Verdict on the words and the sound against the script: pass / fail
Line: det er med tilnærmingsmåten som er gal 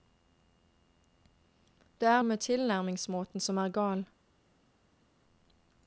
pass